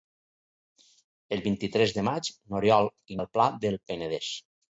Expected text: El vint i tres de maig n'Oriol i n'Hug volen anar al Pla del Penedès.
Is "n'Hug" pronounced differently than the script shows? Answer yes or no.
yes